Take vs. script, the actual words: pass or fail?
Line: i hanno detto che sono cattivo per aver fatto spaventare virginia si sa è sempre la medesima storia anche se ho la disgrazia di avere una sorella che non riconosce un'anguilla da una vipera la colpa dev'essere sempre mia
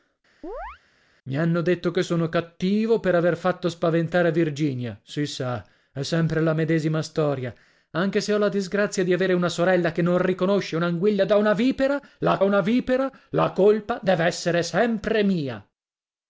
fail